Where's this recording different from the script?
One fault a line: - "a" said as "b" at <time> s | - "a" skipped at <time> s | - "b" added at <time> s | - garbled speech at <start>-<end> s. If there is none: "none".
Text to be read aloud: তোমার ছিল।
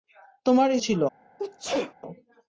none